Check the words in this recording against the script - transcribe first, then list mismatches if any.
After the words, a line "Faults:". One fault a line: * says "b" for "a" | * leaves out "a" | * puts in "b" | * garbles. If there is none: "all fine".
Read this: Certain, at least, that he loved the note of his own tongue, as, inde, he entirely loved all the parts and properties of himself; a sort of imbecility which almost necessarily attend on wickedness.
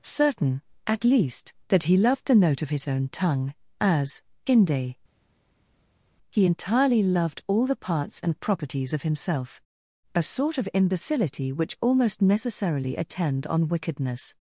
Certain, at least, that he loved the note of his own tongue, as, inde, he entirely loved all the parts and properties of himself; a sort of imbecility which almost necessarily attend on wickedness.
Faults:
all fine